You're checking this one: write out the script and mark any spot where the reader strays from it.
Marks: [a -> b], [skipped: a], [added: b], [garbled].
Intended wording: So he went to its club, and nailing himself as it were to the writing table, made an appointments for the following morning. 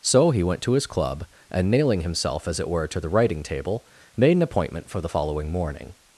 So he went to [its -> his] club, and nailing himself as it were to the writing table, made an [appointments -> appointment] for the following morning.